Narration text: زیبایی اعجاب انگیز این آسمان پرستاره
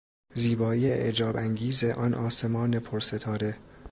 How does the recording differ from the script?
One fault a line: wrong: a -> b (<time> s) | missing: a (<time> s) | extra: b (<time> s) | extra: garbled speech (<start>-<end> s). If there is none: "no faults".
wrong: این -> آن (1.8 s)